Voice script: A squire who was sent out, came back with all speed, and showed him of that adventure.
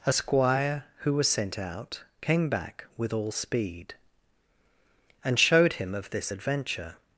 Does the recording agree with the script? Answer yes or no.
no